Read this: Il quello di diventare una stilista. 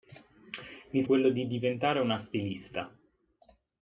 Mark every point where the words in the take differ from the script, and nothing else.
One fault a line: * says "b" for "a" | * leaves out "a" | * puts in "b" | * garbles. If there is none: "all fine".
all fine